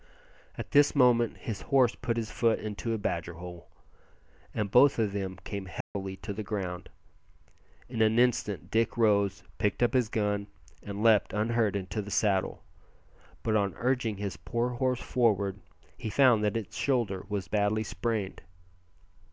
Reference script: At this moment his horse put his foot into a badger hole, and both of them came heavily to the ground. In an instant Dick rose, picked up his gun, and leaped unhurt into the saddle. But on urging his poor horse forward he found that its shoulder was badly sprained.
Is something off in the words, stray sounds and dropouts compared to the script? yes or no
yes